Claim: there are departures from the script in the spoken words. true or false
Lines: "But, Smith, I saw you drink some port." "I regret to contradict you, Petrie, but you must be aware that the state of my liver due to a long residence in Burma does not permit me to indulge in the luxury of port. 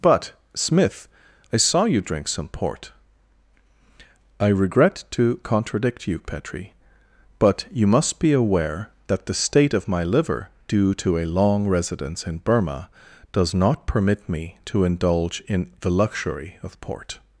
false